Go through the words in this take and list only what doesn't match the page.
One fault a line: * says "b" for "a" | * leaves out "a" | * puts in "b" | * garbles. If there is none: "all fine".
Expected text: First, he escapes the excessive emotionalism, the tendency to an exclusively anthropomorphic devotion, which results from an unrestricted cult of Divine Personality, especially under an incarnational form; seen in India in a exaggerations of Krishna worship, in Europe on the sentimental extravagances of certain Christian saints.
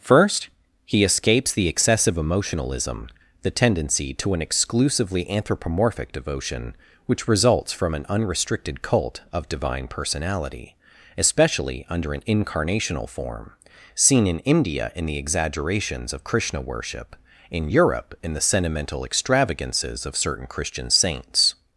* says "the" for "a"
* says "in" for "on"